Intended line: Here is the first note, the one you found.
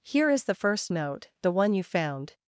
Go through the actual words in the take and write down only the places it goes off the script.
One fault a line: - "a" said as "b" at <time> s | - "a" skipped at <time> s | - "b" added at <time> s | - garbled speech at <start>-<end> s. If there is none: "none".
none